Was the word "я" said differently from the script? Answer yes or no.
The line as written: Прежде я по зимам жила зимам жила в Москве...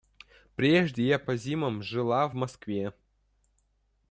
no